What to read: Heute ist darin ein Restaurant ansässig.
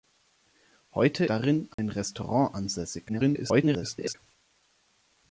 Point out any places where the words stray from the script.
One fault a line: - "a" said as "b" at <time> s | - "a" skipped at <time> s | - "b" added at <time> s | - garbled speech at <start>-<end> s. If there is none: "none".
- "ist" skipped at 1.2 s
- garbled speech at 3.1-4.2 s